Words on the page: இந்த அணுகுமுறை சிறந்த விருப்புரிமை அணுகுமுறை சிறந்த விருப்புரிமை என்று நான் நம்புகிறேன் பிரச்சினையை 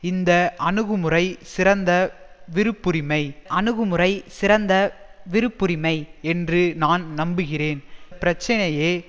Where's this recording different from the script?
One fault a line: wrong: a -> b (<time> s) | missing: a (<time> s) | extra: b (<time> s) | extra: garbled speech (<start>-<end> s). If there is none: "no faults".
no faults